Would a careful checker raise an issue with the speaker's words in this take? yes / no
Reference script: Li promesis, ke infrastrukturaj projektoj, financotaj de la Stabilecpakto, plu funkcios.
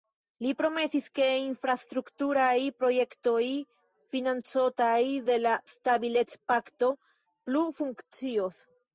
no